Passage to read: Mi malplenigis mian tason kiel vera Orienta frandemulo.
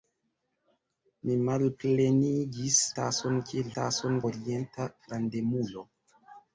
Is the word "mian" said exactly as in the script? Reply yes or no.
no